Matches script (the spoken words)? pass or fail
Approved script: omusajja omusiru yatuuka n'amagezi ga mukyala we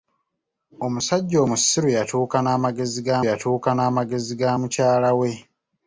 fail